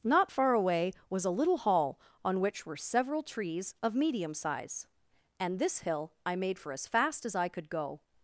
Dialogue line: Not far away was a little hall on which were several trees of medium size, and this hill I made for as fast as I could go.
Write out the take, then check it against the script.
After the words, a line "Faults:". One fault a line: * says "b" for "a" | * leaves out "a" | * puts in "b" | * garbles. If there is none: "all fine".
Not far away was a little hall on which were several trees of medium size, and this hill I made for as fast as I could go.
Faults:
all fine